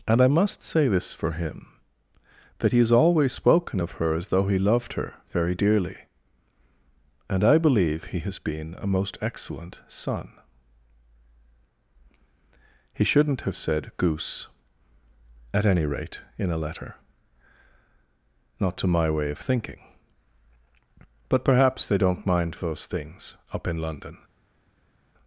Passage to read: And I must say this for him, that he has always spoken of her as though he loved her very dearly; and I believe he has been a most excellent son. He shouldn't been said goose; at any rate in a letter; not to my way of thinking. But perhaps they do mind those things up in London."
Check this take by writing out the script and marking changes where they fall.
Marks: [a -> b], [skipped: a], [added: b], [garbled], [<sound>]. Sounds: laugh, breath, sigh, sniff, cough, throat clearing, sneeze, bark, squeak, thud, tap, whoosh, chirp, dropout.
And I must say this for him, that he has always spoken of her as though he loved her very dearly; and I believe he has been a most excellent son. He shouldn't [been -> have] said goose; at any rate in a letter; not to my way of thinking. But perhaps they [do -> don't] mind those things up in London."